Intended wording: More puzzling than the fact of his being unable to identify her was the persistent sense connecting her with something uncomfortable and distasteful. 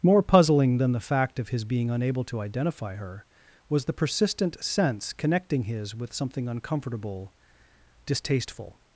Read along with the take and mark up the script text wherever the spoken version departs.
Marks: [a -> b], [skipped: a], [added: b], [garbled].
More puzzling than the fact of his being unable to identify her was the persistent sense connecting [her -> his] with something uncomfortable [skipped: and] distasteful.